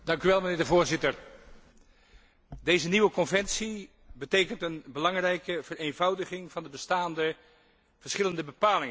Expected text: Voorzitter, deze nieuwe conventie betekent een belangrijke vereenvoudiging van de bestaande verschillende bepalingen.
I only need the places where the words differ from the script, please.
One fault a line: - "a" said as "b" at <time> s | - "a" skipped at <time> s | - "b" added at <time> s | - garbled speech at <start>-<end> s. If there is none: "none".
none